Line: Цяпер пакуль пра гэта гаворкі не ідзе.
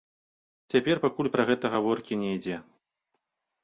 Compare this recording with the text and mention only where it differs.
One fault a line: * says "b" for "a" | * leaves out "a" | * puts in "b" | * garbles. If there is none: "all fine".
all fine